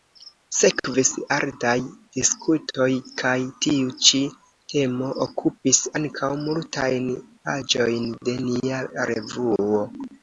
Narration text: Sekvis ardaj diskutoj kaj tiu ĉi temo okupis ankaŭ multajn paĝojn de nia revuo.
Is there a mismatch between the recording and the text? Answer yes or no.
no